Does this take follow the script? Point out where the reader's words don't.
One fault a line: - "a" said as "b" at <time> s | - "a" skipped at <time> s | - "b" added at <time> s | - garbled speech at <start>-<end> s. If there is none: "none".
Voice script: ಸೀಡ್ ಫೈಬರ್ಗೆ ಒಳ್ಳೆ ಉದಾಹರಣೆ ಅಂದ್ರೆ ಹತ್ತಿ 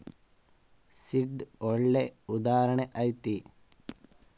- "ಫೈಬರ್ಗೆ" skipped at 1.4 s
- "ಅಂದ್ರೆ" skipped at 2.9 s